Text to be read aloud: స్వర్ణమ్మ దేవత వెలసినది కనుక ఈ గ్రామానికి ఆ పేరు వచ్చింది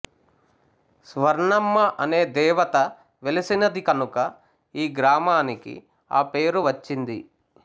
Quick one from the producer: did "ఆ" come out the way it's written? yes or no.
yes